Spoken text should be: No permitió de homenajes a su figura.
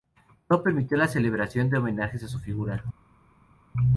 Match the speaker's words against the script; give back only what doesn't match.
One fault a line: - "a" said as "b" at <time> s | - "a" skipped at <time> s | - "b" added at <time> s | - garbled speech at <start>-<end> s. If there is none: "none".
- "la celebración" added at 1.0 s